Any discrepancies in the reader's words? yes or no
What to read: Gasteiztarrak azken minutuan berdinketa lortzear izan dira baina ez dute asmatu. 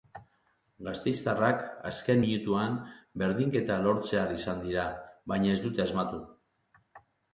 no